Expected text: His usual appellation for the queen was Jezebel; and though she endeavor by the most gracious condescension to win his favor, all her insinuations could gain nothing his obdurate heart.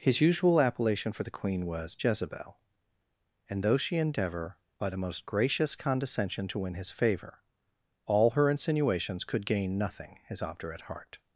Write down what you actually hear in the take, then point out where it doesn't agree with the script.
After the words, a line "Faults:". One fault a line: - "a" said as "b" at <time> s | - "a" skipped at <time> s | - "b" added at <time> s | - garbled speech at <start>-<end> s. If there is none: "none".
His usual appellation for the queen was Jezebel; and though she endeavor by the most gracious condescension to win his favor, all her insinuations could gain nothing his obdurate heart.
Faults:
none